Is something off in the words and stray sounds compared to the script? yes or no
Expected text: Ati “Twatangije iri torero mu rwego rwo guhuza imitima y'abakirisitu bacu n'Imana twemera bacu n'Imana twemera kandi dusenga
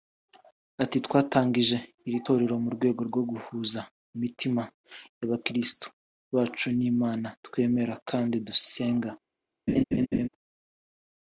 yes